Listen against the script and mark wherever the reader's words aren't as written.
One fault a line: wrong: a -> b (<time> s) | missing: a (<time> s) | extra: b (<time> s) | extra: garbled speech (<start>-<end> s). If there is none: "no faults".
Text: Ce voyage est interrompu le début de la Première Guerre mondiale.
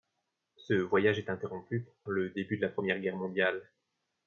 no faults